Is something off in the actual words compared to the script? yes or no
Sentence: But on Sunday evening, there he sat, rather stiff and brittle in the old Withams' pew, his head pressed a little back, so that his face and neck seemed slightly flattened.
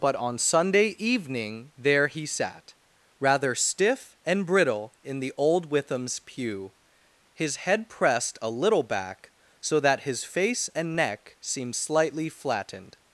no